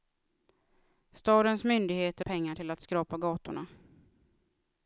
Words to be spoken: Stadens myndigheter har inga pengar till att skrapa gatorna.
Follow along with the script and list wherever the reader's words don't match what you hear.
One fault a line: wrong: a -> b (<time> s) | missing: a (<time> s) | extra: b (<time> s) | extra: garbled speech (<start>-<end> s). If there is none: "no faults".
missing: har inga (2.2 s)